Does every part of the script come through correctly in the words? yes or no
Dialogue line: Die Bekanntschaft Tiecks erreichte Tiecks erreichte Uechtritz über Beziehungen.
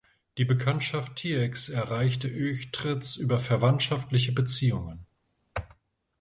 no